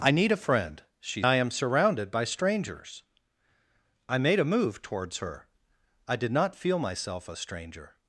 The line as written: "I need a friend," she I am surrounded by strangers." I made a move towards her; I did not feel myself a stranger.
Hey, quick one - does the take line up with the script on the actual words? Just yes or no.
yes